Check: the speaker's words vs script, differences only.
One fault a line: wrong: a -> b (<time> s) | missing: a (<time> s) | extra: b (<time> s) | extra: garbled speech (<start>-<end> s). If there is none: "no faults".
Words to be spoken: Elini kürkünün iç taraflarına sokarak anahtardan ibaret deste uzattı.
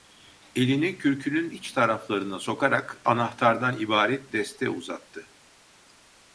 no faults